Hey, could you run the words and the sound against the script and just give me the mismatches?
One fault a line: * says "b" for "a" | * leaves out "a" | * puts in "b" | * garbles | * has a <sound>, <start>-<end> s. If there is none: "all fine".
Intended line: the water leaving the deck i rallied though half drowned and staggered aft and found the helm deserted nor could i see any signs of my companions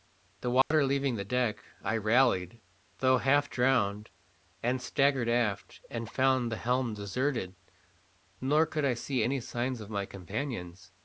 * has a dropout, 0.6-0.7 s